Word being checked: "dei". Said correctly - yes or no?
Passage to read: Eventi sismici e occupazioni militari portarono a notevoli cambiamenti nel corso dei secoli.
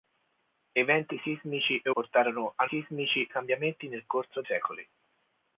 no